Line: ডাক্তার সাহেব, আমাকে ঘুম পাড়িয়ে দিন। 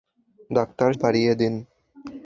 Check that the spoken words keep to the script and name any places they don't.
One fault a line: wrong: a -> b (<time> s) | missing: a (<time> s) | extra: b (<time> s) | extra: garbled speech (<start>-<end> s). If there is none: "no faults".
missing: সাহেব আমাকে ঘুম (0.9 s)